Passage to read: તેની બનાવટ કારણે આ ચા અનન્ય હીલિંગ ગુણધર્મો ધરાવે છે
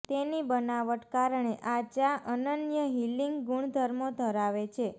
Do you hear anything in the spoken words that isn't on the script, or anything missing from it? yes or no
no